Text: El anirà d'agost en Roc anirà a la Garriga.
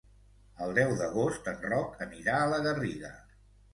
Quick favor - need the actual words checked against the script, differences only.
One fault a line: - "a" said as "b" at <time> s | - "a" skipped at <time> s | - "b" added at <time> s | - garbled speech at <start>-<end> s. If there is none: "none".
- "anirà" said as "deu" at 0.8 s